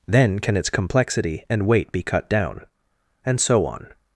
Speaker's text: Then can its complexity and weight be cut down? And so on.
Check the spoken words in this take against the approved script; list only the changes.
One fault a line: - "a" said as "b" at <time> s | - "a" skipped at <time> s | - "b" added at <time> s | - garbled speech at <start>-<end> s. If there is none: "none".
none